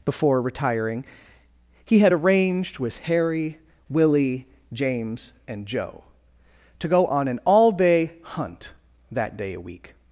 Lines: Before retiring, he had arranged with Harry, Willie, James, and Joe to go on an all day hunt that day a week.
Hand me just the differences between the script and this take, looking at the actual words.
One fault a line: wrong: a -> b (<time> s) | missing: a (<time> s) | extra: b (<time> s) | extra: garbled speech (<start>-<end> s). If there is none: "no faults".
no faults